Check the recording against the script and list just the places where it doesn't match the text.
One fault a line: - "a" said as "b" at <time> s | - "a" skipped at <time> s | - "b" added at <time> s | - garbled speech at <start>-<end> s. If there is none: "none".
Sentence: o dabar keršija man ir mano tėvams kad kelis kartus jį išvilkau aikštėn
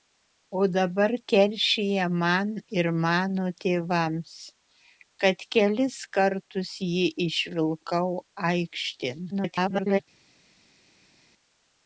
- garbled speech at 9.3-10.0 s